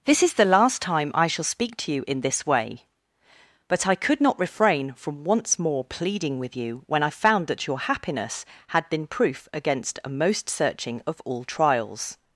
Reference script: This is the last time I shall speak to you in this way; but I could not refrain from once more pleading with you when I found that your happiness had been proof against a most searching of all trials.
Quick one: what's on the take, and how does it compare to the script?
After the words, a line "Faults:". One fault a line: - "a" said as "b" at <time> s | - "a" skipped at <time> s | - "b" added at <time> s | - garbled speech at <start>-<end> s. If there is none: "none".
This is the last time I shall speak to you in this way; but I could not refrain from once more pleading with you when I found that your happiness had been proof against a most searching of all trials.
Faults:
none